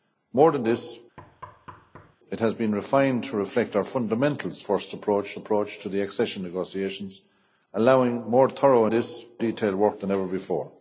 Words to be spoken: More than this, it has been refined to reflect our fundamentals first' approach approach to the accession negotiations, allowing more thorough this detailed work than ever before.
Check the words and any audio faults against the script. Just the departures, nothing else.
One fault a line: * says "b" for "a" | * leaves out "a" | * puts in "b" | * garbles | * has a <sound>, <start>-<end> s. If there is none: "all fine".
* has a thud, 1.2-2.2 s